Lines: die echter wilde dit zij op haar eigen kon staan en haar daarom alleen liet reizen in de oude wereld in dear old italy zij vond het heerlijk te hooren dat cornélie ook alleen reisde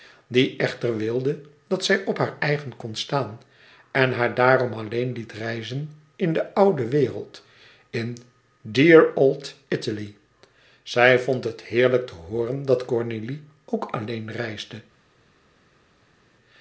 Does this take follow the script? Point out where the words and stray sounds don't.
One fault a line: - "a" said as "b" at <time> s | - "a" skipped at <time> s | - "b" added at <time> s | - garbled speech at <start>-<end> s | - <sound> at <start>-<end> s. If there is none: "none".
- "dit" said as "dat" at 1.7 s